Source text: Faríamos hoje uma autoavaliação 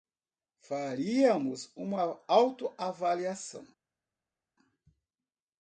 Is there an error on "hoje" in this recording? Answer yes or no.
yes